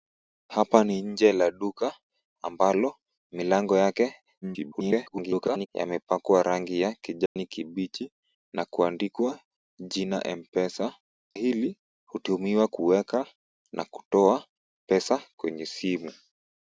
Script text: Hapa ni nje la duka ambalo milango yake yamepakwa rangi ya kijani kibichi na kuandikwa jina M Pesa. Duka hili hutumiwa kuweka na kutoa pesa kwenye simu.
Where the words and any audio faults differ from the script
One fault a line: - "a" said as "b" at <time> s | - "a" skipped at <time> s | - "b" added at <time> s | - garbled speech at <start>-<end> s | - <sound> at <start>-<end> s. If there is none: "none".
- garbled speech at 4.4-5.7 s
- dropout at 7.3-7.4 s
- "Duka" skipped at 10.9 s